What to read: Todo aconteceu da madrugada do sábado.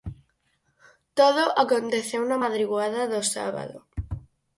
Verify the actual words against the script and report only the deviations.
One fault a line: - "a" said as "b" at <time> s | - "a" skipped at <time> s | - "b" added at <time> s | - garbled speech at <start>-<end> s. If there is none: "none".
- "da" said as "na" at 2.3 s